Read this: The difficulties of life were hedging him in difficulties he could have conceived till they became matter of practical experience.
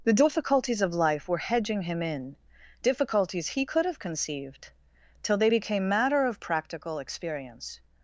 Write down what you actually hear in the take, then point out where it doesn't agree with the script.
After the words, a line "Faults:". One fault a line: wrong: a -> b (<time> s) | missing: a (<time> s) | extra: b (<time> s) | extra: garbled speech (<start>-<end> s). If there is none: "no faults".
The difficulties of life were hedging him in difficulties he could have conceived till they became matter of practical experience.
Faults:
no faults